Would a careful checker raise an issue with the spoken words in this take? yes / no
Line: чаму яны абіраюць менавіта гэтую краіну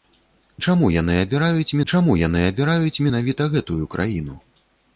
yes